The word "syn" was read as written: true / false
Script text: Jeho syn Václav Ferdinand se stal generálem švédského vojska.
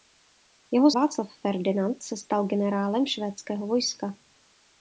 false